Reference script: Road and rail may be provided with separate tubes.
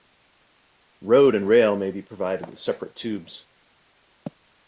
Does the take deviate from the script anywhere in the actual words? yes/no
no